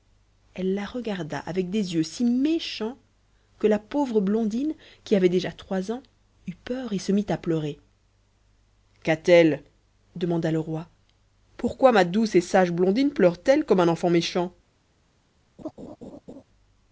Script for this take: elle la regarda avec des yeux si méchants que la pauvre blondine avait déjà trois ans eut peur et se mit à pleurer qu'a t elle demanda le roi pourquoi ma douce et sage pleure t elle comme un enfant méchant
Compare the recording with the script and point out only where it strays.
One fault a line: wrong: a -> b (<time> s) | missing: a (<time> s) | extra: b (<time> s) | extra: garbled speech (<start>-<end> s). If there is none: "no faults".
extra: qui (5.0 s)
extra: blondine (12.7 s)